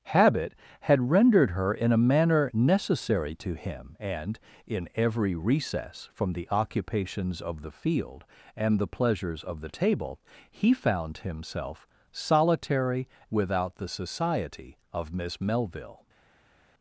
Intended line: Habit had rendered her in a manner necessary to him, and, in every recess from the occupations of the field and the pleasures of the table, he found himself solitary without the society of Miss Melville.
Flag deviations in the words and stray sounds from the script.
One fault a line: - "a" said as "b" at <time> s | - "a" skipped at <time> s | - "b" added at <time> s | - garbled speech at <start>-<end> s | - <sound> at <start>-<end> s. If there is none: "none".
none